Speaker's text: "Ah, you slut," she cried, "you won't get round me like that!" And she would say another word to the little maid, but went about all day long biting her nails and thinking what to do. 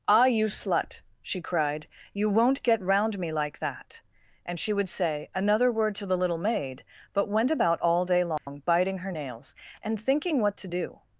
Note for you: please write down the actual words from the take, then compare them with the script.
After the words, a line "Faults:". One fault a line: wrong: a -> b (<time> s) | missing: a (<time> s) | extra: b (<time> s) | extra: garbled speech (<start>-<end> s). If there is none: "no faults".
"Ah, you slut," she cried, "you won't get round me like that!" And she would say another word to the little maid, but went about all day long biting her nails and thinking what to do.
Faults:
no faults